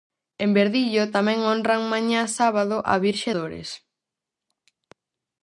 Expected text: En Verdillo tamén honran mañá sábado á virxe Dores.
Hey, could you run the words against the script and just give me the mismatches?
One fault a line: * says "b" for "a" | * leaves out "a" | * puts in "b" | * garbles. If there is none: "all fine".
all fine